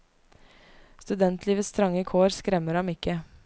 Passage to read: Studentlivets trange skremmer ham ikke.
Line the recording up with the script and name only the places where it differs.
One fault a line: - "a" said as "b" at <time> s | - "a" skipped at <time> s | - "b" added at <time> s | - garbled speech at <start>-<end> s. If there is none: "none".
- "kår" added at 2.0 s